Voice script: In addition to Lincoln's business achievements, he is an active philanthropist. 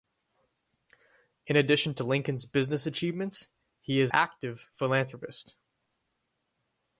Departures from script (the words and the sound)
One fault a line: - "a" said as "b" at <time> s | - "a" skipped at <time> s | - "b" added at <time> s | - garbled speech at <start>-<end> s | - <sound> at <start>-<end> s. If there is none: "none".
- "an" skipped at 4.1 s